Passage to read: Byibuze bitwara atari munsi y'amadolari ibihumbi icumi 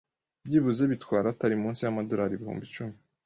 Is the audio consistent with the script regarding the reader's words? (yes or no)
yes